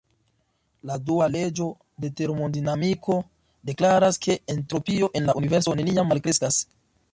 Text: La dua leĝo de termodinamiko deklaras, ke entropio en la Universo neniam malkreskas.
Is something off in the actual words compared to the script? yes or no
no